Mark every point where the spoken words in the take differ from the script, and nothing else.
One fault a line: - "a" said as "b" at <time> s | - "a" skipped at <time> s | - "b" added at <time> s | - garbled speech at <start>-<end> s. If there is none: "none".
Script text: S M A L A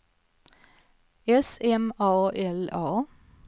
none